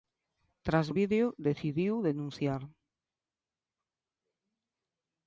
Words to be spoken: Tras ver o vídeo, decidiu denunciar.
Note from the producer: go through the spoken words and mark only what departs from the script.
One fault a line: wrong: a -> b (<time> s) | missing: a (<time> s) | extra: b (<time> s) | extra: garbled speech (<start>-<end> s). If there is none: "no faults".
missing: ver (0.9 s)